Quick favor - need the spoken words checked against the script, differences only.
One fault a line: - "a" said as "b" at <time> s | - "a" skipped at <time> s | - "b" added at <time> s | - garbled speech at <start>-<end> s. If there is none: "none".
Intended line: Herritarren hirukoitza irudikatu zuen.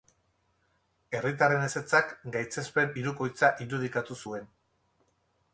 - "ezetzak gaitzespen" added at 1.6 s